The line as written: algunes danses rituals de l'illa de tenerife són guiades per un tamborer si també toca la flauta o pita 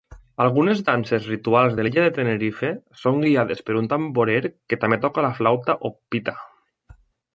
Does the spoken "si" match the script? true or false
false